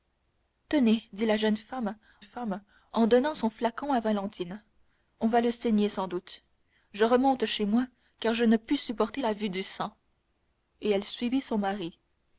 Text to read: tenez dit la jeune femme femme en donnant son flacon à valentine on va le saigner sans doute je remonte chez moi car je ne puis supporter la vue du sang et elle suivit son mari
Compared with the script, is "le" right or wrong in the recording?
right